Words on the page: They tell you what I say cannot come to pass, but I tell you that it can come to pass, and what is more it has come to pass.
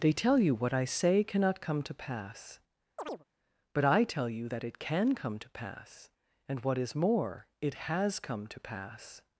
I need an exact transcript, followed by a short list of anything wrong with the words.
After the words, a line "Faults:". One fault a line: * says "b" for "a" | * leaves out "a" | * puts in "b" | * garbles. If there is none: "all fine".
They tell you what I say cannot come to pass, but I tell you that it can come to pass, and what is more it has come to pass.
Faults:
all fine